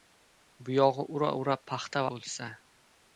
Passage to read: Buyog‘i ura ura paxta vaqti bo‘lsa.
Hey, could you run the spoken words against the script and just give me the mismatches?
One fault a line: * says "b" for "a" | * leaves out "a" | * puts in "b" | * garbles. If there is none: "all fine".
* leaves out "vaqti"